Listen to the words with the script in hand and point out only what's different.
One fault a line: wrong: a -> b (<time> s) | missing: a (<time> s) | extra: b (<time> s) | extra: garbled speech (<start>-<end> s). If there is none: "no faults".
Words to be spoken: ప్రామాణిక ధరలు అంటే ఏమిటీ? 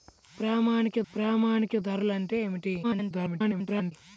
extra: ప్రామాణిక (1.1 s)
extra: garbled speech (2.8-3.9 s)